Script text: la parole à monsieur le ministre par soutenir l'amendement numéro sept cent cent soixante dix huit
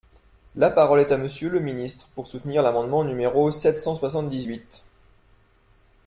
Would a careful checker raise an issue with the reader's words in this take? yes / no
yes